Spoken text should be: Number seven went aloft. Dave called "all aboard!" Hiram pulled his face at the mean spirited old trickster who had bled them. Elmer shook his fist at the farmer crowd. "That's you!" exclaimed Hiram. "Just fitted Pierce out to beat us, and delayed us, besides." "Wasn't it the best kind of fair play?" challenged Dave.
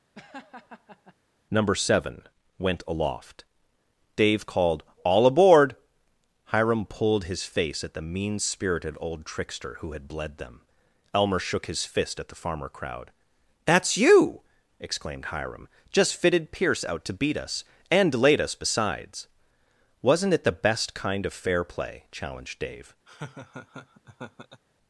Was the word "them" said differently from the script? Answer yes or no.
no